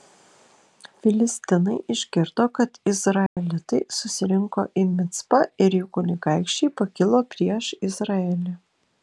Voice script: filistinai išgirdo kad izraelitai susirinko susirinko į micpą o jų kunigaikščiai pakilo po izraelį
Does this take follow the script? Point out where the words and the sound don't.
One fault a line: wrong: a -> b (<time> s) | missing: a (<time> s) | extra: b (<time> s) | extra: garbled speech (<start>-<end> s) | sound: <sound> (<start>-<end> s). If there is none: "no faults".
sound: dropout (3.3-3.4 s)
missing: susirinko (4.7 s)
wrong: o -> ir (5.7 s)
wrong: po -> prieš (7.4 s)